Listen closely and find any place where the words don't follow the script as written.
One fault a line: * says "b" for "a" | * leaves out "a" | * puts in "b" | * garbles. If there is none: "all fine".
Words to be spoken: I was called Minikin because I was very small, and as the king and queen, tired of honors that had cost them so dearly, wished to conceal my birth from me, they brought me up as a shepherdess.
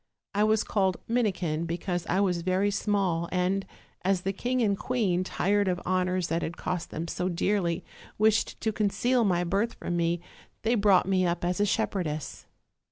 all fine